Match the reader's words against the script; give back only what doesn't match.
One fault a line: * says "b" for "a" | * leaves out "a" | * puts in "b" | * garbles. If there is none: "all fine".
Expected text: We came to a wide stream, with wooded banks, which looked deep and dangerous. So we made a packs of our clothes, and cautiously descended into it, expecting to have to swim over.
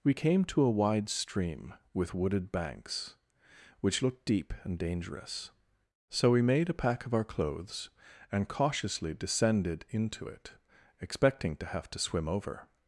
* says "pack" for "packs"